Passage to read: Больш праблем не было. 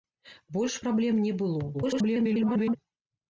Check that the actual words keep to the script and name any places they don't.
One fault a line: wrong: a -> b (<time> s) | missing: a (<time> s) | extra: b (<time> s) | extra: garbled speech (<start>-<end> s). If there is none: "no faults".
extra: garbled speech (1.7-2.8 s)